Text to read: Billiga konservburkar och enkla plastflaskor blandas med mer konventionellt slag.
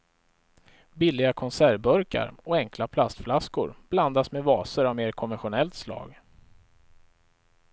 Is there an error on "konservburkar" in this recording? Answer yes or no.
no